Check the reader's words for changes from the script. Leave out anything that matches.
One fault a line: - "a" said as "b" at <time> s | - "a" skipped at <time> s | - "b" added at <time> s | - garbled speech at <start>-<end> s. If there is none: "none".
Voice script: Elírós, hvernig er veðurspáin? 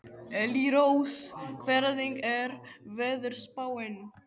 none